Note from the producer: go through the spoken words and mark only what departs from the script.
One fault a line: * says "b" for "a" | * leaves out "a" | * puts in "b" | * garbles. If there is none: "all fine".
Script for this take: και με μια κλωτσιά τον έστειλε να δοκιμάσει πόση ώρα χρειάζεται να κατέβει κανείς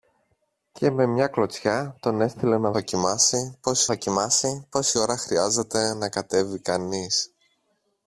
* puts in "δοκιμάσει πόση"